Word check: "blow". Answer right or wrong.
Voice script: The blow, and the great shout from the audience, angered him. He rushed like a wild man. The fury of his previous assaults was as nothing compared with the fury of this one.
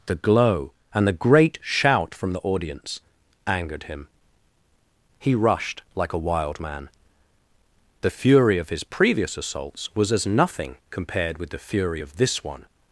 wrong